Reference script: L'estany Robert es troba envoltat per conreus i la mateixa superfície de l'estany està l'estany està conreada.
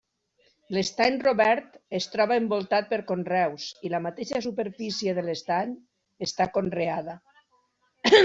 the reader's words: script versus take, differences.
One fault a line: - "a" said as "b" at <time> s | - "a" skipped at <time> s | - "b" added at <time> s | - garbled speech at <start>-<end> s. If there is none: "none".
- "l'estany està" skipped at 6.5 s